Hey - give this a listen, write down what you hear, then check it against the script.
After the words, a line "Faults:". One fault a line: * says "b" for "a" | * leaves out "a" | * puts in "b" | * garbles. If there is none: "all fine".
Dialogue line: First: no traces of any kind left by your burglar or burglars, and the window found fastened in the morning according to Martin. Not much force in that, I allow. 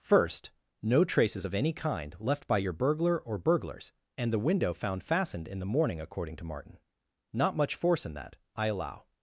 First: no traces of any kind left by your burglar or burglars, and the window found fastened in the morning according to Martin. Not much force in that, I allow.
Faults:
all fine